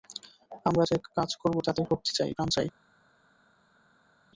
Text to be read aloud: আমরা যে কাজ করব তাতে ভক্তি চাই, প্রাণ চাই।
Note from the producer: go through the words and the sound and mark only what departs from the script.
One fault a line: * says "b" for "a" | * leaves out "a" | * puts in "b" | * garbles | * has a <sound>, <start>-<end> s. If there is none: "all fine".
all fine